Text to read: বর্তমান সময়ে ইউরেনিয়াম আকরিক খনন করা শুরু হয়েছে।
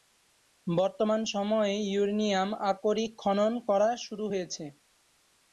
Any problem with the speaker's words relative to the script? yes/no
no